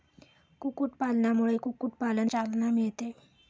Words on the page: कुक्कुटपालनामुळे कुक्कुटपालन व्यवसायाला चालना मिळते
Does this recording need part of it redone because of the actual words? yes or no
yes